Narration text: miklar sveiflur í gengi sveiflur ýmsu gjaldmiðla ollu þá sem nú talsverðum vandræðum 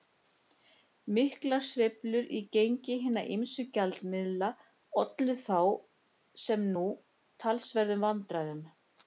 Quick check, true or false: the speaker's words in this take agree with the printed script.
false